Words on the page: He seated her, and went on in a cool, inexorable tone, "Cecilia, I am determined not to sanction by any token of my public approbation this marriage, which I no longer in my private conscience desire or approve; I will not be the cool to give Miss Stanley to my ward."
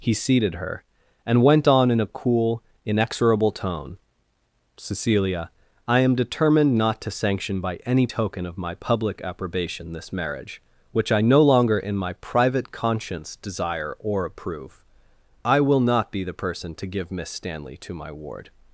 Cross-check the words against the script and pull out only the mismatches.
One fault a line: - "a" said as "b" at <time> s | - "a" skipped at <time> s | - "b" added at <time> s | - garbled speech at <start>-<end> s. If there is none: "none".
- "cool" said as "person" at 16.3 s